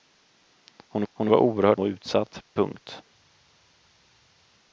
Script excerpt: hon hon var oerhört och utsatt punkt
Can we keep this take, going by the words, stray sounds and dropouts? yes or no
yes